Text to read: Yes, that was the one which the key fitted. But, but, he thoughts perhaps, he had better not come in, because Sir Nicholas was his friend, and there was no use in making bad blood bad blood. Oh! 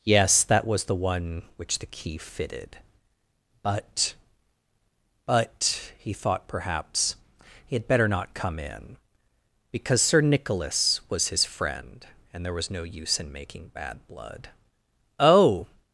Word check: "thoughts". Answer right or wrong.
wrong